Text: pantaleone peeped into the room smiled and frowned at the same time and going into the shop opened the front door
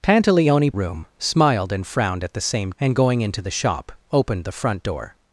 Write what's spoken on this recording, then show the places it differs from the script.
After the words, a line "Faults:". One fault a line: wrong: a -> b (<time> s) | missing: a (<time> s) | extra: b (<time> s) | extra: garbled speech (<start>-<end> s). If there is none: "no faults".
pantaleone room smiled and frowned at the same and going into the shop opened the front door
Faults:
missing: peeped into the (0.7 s)
missing: time (2.7 s)